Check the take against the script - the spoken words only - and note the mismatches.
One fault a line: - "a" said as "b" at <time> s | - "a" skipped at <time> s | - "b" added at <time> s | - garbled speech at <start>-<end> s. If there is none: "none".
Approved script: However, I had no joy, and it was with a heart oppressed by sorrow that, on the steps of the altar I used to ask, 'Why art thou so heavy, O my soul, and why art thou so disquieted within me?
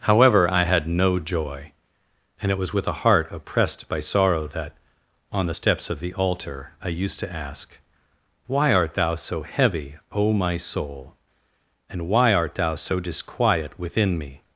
- "disquieted" said as "disquiet" at 13.0 s